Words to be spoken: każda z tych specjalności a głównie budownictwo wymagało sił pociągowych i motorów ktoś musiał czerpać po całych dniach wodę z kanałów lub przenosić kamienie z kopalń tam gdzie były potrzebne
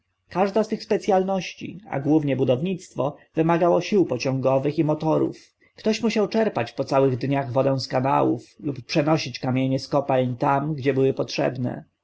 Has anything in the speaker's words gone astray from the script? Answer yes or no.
no